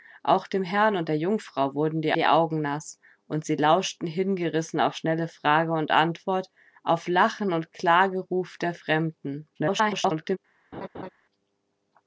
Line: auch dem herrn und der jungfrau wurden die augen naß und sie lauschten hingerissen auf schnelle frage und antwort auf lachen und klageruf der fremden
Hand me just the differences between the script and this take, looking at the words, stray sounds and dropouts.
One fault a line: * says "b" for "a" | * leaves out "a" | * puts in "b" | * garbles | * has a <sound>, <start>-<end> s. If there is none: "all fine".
* puts in "die"
* garbles
* has a laugh, 10.7-11.1 s